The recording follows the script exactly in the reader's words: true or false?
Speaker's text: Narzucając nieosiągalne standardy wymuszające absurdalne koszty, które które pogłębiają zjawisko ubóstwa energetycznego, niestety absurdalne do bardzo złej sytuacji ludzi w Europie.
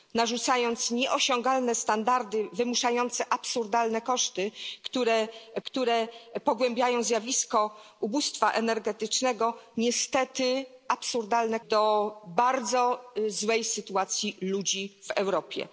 true